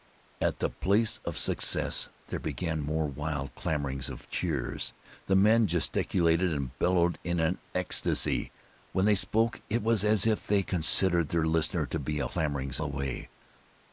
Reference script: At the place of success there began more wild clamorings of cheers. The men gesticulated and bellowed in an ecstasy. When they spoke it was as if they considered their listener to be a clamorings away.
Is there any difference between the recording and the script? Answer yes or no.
no